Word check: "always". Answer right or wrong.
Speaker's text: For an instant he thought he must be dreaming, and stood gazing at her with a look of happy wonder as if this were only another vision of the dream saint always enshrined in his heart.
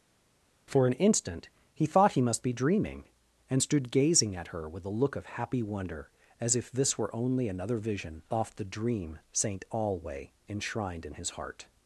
wrong